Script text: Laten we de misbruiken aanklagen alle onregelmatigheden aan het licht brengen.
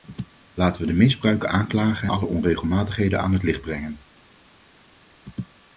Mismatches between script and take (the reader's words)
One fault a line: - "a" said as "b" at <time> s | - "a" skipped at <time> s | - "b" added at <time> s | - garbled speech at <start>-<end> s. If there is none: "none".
none